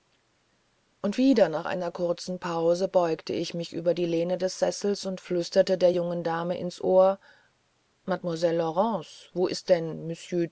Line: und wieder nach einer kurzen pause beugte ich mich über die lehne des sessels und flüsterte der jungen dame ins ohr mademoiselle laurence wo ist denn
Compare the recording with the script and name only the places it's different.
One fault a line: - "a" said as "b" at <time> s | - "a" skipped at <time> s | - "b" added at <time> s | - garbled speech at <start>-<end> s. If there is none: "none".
none